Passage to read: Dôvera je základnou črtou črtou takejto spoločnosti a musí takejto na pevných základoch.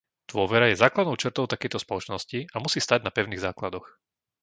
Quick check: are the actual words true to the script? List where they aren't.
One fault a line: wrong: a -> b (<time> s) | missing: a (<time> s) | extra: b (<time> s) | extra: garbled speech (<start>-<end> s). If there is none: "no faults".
missing: črtou (1.4 s)
wrong: takejto -> stáť (2.8 s)